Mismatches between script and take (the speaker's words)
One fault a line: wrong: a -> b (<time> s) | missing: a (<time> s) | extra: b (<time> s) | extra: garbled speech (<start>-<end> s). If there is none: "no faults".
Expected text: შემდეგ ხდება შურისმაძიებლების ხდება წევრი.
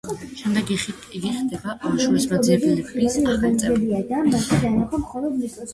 extra: იგი (0.8 s)
wrong: ხდება -> ახალი (3.4 s)